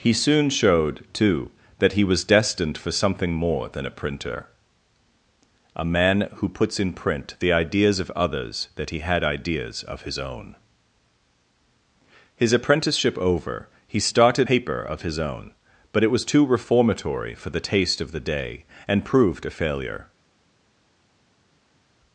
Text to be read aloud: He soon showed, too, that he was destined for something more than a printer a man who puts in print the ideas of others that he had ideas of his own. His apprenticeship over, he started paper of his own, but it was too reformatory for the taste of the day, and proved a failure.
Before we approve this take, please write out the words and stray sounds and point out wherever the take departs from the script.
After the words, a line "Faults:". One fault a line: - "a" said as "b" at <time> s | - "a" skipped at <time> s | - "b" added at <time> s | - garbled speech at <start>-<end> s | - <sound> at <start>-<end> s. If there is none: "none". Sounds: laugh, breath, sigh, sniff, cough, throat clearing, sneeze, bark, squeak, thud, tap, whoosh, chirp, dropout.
He soon showed, too, that he was destined for something more than a printer a man who puts in print the ideas of others that he had ideas of his own. His apprenticeship over, he started paper of his own, but it was too reformatory for the taste of the day, and proved a failure.
Faults:
none